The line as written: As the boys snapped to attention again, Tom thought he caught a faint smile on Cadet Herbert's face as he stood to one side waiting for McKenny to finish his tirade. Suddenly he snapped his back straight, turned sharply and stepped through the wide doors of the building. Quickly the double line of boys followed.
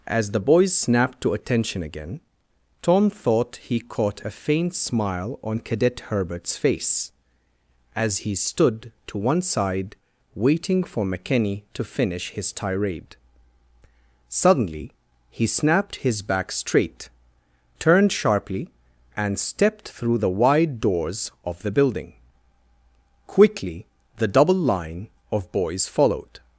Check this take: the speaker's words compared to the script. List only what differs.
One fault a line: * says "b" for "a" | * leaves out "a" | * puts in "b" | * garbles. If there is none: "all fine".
all fine